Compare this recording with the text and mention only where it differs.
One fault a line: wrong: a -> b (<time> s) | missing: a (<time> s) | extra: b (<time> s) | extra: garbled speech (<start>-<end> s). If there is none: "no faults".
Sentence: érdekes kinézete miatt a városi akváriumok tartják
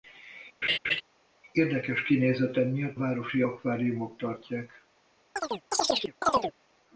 missing: a (3.0 s)